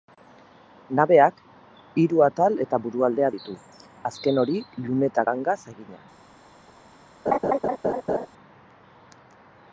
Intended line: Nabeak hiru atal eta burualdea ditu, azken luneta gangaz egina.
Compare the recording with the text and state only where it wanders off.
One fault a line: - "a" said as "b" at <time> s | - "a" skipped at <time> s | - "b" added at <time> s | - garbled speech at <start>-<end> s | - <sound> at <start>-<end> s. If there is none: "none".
- "hori" added at 4.4 s
- laugh at 7.3-8.3 s